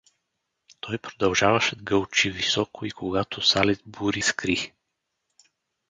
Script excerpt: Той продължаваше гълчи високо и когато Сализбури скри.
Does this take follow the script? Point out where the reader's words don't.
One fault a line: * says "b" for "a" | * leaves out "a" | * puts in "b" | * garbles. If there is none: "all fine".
all fine